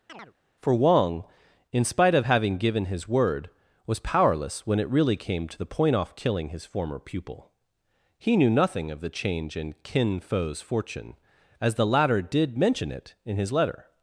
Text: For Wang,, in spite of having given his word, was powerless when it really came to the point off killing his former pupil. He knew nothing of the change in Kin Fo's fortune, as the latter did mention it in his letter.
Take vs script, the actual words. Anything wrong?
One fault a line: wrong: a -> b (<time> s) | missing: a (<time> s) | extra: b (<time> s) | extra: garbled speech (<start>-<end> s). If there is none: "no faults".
no faults